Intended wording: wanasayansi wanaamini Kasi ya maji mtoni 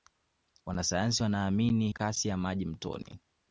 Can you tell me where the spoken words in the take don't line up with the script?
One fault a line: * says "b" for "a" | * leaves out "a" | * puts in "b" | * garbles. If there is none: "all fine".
all fine